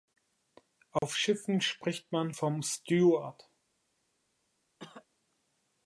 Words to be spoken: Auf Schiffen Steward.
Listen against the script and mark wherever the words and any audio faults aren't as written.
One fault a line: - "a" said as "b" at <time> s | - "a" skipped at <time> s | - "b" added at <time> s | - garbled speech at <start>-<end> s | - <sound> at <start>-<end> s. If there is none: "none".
- dropout at 1.0-1.0 s
- "spricht man vom" added at 1.6 s
- cough at 4.8-5.1 s